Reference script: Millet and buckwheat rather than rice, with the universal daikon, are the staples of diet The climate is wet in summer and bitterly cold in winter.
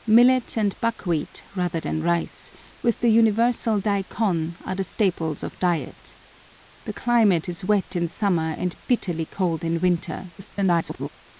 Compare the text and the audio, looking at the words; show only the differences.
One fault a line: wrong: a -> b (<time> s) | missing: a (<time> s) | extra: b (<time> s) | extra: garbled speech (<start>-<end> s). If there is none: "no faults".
extra: garbled speech (10.4-11.1 s)